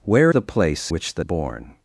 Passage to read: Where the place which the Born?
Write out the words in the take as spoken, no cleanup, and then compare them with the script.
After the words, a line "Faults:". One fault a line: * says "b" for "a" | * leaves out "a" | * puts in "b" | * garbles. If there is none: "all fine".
Where the place which the Born?
Faults:
all fine